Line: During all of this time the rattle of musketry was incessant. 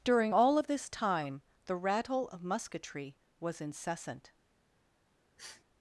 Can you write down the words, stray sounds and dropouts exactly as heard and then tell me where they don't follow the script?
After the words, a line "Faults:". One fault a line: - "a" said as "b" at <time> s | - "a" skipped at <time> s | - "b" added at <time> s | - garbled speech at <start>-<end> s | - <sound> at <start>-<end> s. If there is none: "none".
During all of this time the rattle of musketry was incessant.
Faults:
- sniff at 5.4-5.6 s